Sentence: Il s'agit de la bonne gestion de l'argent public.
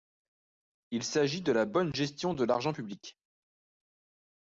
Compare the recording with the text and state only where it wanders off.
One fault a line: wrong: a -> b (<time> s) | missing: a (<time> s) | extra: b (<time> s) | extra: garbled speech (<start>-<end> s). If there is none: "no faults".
no faults